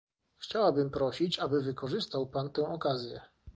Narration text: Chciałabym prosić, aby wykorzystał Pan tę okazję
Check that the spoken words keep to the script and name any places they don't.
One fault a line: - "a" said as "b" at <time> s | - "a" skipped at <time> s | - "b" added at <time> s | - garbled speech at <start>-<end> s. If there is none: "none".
none